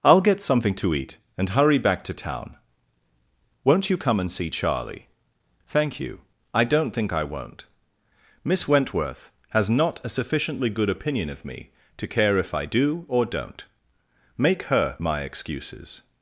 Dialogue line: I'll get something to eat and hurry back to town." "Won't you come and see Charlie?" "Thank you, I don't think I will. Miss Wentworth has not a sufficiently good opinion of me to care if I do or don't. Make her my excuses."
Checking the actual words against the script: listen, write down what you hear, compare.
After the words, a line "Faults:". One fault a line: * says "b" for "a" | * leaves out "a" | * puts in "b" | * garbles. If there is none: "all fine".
I'll get something to eat and hurry back to town." "Won't you come and see Charlie?" "Thank you, I don't think I won't. Miss Wentworth has not a sufficiently good opinion of me to care if I do or don't. Make her my excuses."
Faults:
* says "won't" for "will"